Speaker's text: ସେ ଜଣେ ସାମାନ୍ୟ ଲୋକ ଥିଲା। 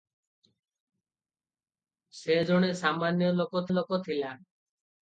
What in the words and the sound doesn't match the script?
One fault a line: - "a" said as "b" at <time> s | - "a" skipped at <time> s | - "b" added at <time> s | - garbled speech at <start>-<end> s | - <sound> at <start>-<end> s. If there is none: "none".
- "ଲୋକ" added at 3.7 s